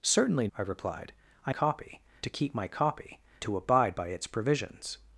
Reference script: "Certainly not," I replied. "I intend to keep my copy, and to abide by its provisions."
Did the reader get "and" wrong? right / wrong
wrong